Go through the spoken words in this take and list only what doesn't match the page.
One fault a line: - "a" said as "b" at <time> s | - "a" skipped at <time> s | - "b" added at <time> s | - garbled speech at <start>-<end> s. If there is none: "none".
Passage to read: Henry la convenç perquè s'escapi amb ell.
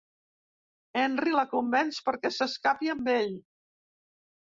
none